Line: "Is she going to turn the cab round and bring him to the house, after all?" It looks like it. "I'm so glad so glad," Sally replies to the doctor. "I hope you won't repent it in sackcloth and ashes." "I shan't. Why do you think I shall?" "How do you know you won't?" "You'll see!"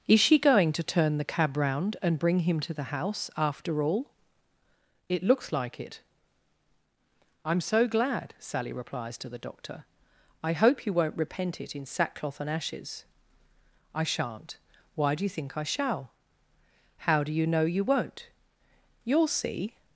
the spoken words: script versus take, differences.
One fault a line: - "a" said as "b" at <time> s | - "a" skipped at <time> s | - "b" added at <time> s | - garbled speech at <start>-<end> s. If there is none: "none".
- "so glad" skipped at 8.3 s